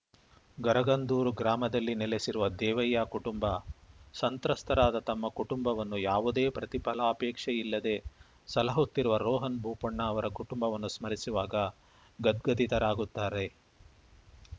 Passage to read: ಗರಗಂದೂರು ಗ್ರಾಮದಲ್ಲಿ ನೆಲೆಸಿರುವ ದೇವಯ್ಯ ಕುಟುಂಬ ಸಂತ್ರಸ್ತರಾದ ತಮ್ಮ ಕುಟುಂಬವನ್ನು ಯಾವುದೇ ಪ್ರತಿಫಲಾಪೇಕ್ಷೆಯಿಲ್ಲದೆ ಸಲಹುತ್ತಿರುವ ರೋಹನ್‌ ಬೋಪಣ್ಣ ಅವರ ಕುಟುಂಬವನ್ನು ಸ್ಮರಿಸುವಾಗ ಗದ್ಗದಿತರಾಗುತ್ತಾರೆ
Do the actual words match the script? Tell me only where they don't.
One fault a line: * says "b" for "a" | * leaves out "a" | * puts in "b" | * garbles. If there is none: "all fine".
all fine